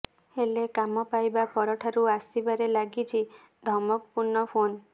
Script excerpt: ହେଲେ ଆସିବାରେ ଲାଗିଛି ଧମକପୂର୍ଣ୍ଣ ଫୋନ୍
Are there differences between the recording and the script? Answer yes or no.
yes